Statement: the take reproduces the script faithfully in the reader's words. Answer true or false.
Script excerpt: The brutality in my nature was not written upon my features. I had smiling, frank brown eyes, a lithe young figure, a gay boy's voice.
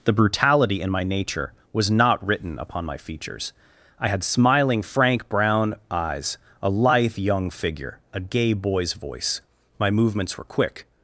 false